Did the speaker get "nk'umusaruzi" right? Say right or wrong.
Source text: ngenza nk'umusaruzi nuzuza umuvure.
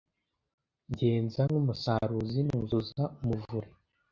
right